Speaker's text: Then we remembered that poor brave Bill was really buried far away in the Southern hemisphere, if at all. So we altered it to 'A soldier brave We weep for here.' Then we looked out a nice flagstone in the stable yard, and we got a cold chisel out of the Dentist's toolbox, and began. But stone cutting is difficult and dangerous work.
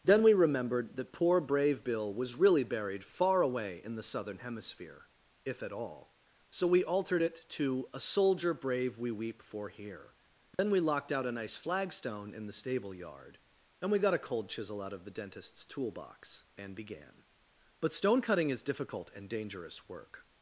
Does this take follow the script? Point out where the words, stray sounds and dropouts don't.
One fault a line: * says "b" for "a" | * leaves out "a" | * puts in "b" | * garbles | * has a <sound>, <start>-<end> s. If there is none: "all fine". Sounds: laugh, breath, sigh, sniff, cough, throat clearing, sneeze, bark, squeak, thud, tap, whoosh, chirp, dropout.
* has a dropout, 10.5-10.6 s
* says "locked" for "looked"